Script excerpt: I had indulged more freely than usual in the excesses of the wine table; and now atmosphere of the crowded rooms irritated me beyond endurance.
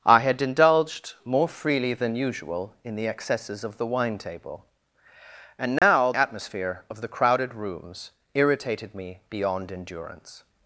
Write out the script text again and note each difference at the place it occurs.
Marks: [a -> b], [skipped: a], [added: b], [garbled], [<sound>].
I had indulged more freely than usual in the excesses of the wine table; and now [dropout] atmosphere of the crowded rooms irritated me beyond endurance.